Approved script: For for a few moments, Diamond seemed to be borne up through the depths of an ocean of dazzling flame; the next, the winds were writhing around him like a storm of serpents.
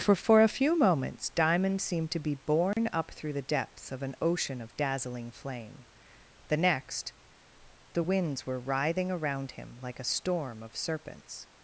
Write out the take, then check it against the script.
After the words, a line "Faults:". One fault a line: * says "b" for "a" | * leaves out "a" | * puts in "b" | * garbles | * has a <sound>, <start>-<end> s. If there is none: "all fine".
For for a few moments, Diamond seemed to be borne up through the depths of an ocean of dazzling flame; the next, the winds were writhing around him like a storm of serpents.
Faults:
* has a dropout, 2.7-2.8 s